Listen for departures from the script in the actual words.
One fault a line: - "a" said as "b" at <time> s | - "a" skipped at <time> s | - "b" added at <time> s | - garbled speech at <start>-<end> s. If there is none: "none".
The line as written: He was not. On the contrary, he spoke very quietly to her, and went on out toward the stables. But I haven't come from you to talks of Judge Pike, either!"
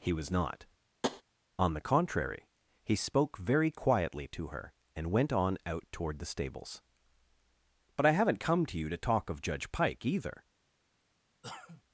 - "from" said as "to" at 8.7 s
- "talks" said as "talk" at 9.0 s